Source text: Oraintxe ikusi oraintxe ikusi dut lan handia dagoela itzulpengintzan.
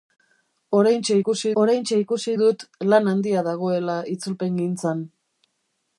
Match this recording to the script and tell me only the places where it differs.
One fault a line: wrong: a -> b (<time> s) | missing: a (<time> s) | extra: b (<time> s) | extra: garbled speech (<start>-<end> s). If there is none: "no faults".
no faults